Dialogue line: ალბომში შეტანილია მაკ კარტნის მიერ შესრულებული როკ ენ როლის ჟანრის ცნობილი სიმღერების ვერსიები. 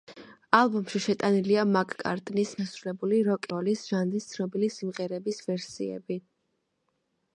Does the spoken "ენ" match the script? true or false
false